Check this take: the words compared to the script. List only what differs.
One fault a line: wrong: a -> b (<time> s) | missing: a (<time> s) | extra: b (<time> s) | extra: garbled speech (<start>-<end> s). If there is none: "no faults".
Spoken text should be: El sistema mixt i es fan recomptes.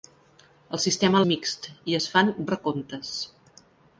no faults